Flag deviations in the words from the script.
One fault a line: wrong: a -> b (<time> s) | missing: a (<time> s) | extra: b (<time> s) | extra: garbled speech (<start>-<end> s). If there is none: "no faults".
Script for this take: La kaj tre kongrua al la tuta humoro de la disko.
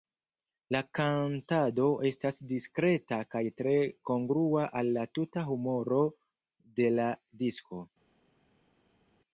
extra: kantado estas diskreta (1.0 s)